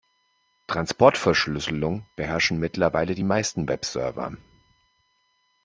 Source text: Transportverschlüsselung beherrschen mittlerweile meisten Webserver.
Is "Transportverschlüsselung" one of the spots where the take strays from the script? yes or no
no